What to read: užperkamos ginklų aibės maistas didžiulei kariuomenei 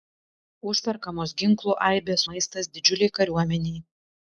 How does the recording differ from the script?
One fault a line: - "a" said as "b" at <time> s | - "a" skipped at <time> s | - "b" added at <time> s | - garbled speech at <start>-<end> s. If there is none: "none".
none